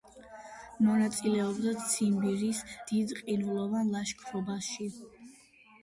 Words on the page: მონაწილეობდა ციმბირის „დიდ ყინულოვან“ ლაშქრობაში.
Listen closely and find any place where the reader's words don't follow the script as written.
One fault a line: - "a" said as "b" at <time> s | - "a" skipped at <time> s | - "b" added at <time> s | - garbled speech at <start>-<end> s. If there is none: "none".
none